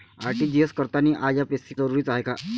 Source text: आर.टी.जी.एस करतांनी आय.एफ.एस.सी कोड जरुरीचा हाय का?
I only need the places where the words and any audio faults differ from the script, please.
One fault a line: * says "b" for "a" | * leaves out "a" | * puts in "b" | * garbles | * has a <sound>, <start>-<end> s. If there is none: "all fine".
* leaves out "कोड"